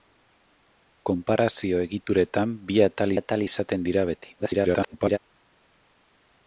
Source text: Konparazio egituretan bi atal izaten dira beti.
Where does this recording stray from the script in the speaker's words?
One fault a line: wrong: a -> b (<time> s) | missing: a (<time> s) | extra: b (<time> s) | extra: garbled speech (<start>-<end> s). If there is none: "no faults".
extra: atal (3.2 s)
extra: garbled speech (4.4-5.2 s)